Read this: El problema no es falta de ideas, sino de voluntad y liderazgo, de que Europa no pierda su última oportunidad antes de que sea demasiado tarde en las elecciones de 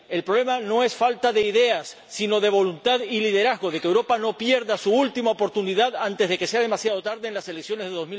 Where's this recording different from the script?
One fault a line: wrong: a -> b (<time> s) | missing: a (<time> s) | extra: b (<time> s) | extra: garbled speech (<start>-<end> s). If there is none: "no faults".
no faults